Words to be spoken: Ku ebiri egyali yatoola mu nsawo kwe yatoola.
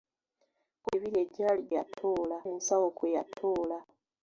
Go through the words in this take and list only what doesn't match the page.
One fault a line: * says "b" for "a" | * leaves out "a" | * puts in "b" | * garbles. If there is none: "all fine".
all fine